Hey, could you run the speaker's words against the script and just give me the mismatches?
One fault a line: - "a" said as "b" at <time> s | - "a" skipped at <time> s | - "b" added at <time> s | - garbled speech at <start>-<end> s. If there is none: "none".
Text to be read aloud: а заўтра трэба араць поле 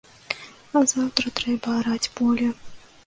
none